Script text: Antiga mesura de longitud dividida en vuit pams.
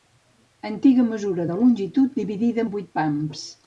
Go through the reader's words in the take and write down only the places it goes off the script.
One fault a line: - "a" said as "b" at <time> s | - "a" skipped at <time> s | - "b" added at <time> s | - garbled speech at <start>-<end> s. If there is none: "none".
none